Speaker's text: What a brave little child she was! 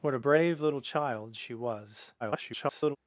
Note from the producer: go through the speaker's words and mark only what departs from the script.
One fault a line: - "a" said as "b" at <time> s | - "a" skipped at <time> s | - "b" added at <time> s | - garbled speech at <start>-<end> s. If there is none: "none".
- garbled speech at 2.2-3.0 s